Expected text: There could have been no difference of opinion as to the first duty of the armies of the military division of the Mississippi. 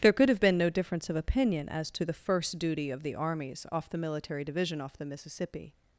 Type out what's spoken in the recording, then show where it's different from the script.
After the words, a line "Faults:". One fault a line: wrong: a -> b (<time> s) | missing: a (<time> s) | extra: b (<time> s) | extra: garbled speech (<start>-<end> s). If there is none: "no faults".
There could have been no difference of opinion as to the first duty of the armies off the military division off the Mississippi.
Faults:
wrong: of -> off (3.7 s)
wrong: of -> off (4.8 s)